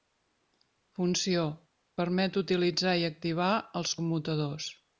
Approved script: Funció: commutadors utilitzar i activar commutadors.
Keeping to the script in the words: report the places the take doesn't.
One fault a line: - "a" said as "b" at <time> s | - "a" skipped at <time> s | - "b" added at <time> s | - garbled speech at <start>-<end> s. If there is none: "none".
- "commutadors" said as "permet" at 2.0 s
- "els" added at 3.8 s